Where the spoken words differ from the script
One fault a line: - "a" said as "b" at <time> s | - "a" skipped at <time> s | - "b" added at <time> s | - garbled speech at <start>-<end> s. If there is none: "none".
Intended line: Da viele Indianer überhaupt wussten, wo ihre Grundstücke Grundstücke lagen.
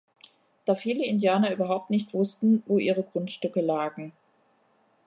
- "nicht" added at 1.9 s
- "Grundstücke" skipped at 3.6 s